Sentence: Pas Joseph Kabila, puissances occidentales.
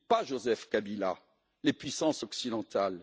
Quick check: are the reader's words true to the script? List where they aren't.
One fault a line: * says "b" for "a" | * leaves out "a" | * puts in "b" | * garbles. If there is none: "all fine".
* puts in "les"